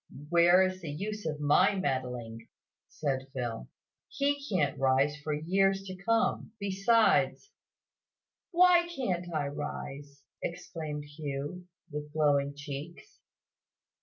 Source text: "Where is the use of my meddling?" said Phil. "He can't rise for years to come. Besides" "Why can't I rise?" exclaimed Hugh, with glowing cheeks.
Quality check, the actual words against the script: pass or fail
pass